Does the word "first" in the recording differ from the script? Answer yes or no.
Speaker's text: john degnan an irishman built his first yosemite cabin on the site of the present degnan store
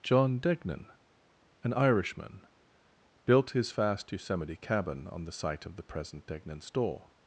yes